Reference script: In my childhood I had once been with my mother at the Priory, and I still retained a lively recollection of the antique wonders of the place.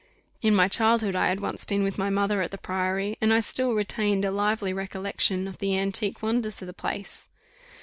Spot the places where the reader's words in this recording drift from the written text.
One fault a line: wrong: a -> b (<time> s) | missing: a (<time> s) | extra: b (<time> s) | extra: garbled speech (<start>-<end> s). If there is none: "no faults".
no faults